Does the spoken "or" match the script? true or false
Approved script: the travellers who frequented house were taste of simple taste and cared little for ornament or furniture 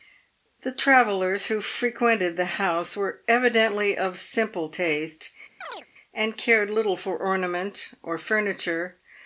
true